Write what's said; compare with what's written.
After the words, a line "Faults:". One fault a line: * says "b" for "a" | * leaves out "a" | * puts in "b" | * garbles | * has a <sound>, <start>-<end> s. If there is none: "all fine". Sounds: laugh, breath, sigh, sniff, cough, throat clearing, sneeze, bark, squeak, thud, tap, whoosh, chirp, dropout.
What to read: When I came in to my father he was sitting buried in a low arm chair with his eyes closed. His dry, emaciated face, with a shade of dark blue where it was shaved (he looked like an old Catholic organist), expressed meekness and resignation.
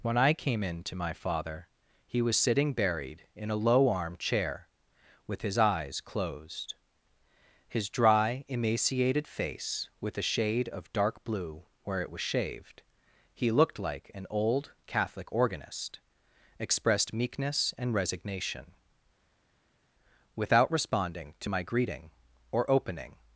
When I came in to my father he was sitting buried in a low arm chair with his eyes closed. His dry, emaciated face, with a shade of dark blue where it was shaved (he looked like an old Catholic organist), expressed meekness and resignation. Without responding to my greeting or opening
Faults:
* puts in "Without responding to my greeting or opening"